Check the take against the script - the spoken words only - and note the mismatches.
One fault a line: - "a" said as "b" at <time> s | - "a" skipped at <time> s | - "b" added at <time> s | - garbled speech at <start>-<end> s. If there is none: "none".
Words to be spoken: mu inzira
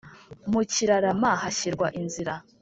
- "kirarama hashyirwa" added at 0.7 s